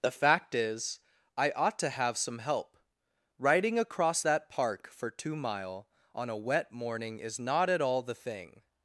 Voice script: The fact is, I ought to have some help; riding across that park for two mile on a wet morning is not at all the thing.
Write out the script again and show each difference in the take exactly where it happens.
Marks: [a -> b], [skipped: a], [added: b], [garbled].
The fact is, I ought to have some help; riding across that park for two mile on a wet morning is not at all the thing.